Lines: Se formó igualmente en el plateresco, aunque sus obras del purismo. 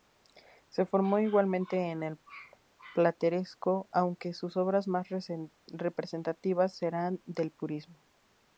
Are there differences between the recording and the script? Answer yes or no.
yes